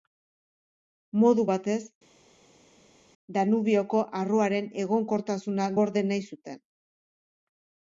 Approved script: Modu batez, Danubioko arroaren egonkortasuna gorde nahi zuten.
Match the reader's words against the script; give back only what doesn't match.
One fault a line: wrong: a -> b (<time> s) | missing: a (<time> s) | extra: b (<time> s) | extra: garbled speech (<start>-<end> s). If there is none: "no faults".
no faults